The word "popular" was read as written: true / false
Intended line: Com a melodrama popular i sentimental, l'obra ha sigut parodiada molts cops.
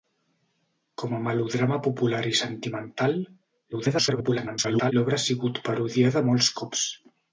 true